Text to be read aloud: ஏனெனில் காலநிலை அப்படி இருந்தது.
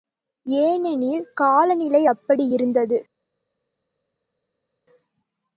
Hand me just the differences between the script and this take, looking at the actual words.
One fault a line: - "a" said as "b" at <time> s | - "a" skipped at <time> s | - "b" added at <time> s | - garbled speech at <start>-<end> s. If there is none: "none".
none